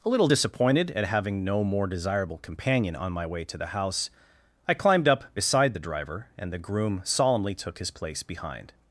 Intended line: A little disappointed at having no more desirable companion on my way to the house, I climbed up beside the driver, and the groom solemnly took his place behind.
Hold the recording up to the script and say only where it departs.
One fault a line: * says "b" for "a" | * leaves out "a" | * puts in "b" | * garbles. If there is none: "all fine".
all fine